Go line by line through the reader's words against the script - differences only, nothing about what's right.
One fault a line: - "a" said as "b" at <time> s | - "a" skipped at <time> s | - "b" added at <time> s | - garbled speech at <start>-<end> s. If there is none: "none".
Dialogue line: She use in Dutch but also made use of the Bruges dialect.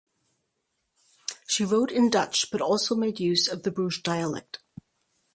- "use" said as "wrote" at 1.6 s